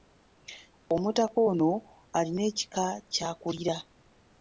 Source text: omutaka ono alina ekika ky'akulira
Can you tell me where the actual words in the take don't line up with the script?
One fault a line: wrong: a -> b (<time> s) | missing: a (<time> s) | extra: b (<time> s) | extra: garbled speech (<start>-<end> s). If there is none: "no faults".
no faults